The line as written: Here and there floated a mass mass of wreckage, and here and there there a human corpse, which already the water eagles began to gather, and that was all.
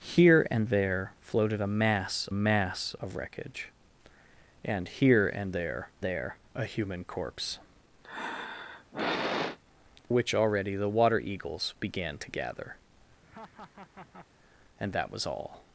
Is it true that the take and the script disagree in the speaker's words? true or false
false